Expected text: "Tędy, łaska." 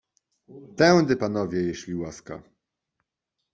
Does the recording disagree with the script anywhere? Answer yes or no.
yes